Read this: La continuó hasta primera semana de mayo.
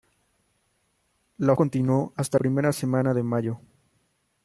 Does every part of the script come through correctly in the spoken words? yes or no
yes